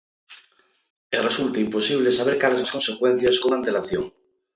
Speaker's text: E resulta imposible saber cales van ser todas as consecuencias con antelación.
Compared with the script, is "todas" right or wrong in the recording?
wrong